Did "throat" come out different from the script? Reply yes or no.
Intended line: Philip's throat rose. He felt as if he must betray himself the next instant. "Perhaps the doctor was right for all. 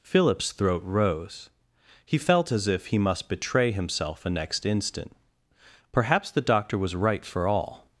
no